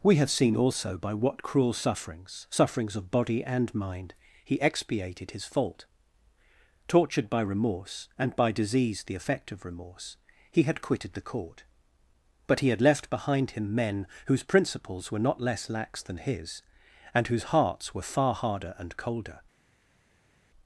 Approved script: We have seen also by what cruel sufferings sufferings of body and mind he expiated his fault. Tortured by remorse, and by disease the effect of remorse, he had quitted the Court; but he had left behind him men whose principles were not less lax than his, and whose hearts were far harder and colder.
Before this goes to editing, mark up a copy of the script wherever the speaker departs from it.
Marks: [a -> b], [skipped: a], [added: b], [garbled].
We have seen also by what cruel sufferings sufferings of body and mind he expiated his fault. Tortured by remorse, and by disease the effect of remorse, he had quitted the Court; but he had left behind him men whose principles were not less lax than his, and whose hearts were far harder and colder.